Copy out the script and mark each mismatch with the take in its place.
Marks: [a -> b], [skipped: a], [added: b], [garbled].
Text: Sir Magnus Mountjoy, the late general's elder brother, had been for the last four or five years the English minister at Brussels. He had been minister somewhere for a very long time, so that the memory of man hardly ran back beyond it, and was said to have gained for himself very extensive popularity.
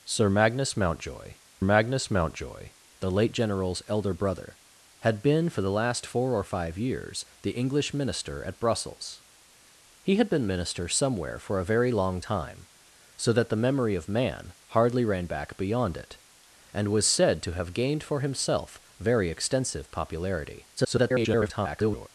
Sir Magnus Mountjoy, [added: Magnus Mountjoy] the late general's elder brother, had been for the last four or five years the English minister at Brussels. He had been minister somewhere for a very long time, so that the memory of man hardly ran back beyond it, and was said to have gained for himself very extensive popularity. [garbled]